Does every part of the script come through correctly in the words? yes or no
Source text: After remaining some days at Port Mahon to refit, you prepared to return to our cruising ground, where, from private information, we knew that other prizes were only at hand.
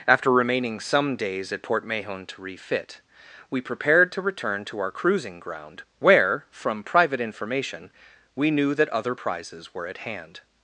no